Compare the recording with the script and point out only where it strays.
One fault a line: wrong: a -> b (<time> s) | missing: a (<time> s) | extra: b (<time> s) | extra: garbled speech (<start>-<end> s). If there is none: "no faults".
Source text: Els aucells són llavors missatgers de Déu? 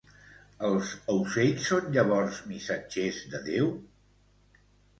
no faults